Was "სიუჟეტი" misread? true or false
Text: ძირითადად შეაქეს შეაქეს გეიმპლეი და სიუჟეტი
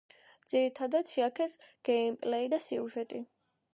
false